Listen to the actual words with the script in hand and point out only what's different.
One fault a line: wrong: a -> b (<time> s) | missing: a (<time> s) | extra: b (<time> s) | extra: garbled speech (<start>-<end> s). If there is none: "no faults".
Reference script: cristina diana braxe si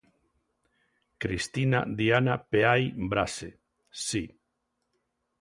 extra: peai (2.4 s)